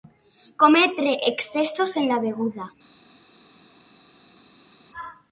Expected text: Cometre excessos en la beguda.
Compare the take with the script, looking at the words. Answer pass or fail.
pass